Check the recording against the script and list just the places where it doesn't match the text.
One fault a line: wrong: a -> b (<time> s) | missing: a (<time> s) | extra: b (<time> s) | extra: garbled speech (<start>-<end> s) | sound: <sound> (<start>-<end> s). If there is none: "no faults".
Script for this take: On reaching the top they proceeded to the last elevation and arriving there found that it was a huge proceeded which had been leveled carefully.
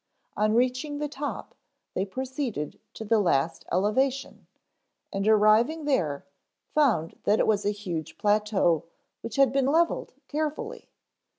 wrong: proceeded -> plateau (8.2 s)